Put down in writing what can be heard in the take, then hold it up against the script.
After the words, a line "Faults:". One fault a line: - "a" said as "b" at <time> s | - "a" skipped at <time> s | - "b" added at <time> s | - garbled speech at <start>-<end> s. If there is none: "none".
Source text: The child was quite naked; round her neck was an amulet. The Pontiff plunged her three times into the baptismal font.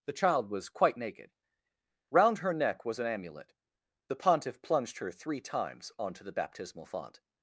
The child was quite naked; round her neck was an amulet. The Pontiff plunged her three times onto the baptismal font.
Faults:
- "into" said as "onto" at 6.0 s